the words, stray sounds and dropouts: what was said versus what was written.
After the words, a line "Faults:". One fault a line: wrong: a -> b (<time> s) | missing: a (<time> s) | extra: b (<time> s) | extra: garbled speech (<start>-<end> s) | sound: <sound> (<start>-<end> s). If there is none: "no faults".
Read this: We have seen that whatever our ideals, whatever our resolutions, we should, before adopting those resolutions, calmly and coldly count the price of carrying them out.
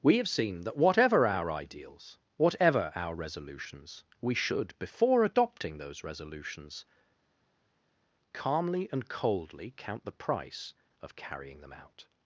We have seen that whatever our ideals, whatever our resolutions, we should, before adopting those resolutions, calmly and coldly count the price of carrying them out.
Faults:
no faults